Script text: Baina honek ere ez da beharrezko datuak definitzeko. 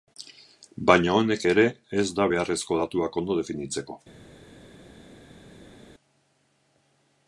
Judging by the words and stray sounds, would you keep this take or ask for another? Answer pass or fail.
fail